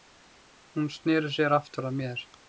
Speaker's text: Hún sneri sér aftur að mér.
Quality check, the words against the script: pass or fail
pass